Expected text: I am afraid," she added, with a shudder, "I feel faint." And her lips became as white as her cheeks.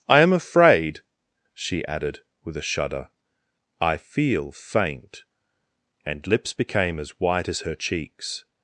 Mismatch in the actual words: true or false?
true